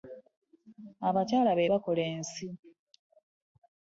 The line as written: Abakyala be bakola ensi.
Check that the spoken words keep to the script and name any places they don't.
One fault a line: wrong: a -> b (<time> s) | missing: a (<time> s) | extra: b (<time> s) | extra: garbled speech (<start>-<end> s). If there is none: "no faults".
no faults